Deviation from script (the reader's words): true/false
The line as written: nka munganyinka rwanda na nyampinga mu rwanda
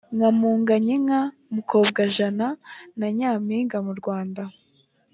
true